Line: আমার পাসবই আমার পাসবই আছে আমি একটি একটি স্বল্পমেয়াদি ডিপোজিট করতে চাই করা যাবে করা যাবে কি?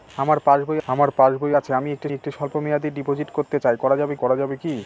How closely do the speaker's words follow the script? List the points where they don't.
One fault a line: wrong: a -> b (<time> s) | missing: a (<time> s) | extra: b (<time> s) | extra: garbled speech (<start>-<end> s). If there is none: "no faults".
no faults